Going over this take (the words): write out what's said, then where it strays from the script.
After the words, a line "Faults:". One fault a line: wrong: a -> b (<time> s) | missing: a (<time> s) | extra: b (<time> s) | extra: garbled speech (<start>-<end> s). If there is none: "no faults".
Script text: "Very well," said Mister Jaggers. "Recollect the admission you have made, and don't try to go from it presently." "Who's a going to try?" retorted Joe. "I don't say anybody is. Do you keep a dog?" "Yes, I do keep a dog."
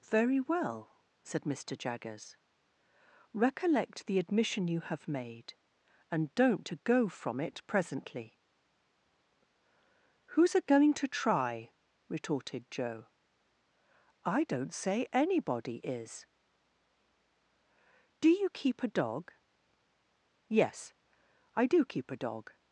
"Very well," said Mister Jaggers. "Recollect the admission you have made, and don't to go from it presently." "Who's a going to try?" retorted Joe. "I don't say anybody is. Do you keep a dog?" "Yes, I do keep a dog."
Faults:
missing: try (6.7 s)